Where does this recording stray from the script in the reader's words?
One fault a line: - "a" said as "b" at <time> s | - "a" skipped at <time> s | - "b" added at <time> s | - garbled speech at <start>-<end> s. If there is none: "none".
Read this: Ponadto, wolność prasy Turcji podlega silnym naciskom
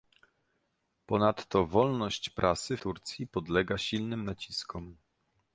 none